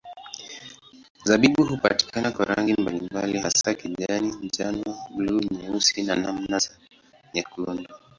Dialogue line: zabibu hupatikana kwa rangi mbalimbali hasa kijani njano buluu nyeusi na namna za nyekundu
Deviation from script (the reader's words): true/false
false